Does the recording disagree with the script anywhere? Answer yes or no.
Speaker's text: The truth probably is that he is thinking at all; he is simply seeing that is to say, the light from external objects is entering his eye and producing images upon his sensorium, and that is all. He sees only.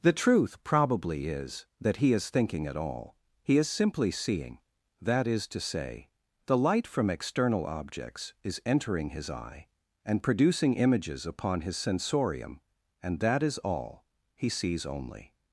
no